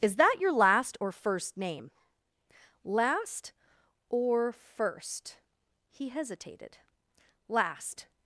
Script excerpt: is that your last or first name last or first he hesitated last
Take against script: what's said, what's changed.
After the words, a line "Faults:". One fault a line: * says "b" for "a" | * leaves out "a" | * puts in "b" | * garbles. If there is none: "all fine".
is that your last or first name last or first he hesitated last
Faults:
all fine